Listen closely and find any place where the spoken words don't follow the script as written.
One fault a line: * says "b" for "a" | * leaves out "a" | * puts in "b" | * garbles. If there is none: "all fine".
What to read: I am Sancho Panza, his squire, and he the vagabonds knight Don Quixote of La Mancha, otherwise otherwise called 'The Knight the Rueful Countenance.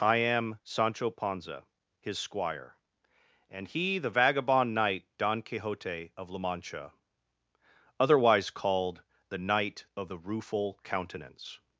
* says "vagabond" for "vagabonds"
* leaves out "otherwise"
* puts in "of"